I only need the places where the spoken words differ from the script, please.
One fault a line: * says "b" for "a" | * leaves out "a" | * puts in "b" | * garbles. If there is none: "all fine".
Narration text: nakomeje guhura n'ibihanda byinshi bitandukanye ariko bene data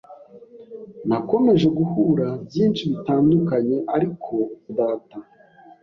* leaves out "n'ibihanda"
* leaves out "bene"